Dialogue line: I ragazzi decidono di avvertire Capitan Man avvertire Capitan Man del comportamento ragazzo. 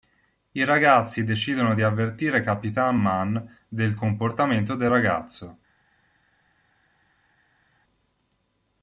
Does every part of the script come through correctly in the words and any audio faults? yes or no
no